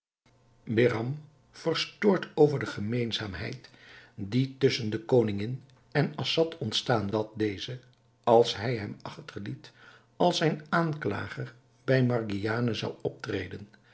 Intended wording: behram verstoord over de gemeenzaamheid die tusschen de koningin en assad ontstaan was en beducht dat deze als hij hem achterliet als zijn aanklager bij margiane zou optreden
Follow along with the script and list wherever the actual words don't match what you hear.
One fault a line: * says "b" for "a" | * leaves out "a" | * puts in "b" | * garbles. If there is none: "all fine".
* leaves out "was en beducht"